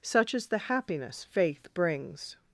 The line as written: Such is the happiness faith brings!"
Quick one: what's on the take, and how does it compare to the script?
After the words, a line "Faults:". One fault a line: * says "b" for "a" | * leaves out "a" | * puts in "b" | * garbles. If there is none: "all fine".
Such is the happiness faith brings!"
Faults:
all fine